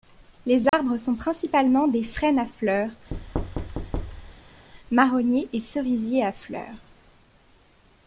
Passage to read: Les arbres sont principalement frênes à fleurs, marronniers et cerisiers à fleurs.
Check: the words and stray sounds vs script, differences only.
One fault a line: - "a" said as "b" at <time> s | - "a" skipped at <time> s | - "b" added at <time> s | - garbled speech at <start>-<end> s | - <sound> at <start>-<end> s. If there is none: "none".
- dropout at 0.7-0.7 s
- "des" added at 1.9 s
- thud at 3.1-4.7 s